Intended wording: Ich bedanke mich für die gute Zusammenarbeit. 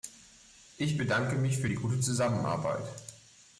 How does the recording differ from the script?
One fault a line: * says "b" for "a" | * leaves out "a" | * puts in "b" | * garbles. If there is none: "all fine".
all fine